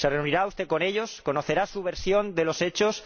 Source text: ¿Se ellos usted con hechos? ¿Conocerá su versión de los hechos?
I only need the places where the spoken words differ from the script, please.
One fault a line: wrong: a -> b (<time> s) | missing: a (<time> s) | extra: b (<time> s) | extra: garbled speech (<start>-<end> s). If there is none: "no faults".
wrong: ellos -> reunirá (0.1 s)
wrong: hechos -> ellos (0.8 s)